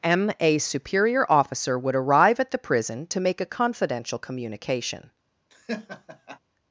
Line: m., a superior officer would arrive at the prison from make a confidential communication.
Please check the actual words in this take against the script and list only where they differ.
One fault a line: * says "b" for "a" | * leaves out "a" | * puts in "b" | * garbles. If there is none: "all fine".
* says "to" for "from"